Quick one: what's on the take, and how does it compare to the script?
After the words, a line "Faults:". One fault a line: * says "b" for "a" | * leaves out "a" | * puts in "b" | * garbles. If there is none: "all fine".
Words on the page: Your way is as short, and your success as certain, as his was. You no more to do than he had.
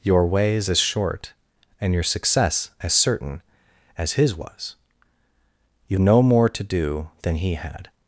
Your way is as short, and your success as certain, as his was. You no more to do than he had.
Faults:
all fine